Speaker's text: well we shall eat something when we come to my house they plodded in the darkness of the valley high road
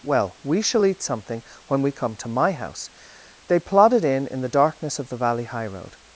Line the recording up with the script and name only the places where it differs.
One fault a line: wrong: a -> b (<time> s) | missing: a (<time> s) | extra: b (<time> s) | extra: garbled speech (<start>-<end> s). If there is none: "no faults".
extra: in (4.3 s)